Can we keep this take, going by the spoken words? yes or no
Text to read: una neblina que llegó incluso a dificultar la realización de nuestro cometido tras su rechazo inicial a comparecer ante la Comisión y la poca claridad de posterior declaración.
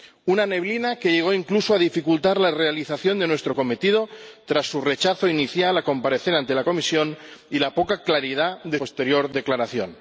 yes